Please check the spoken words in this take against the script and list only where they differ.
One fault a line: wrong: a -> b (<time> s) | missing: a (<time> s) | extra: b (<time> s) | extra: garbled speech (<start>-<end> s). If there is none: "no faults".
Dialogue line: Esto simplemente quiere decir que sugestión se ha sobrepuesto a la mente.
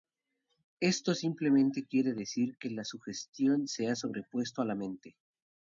extra: la (2.7 s)